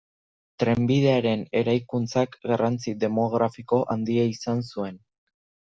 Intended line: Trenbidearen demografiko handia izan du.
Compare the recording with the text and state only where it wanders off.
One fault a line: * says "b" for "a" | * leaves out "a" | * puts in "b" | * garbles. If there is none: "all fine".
* puts in "eraikuntzak garrantzi"
* says "zuen" for "du"